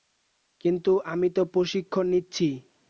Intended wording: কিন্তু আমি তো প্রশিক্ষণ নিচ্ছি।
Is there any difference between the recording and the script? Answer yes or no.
no